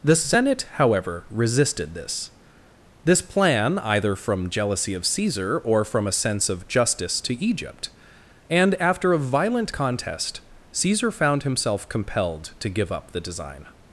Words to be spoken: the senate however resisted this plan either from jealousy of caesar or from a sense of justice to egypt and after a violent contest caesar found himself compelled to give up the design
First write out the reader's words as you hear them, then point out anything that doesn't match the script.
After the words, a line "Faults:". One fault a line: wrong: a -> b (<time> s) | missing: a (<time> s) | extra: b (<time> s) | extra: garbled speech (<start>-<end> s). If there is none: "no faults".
the senate however resisted this this plan either from jealousy of caesar or from a sense of justice to egypt and after a violent contest caesar found himself compelled to give up the design
Faults:
extra: this (3.0 s)